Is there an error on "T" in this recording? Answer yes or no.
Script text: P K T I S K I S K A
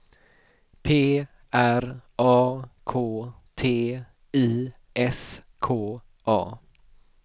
no